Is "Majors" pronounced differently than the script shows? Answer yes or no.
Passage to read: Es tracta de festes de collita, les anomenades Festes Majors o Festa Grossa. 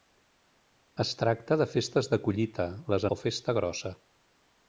yes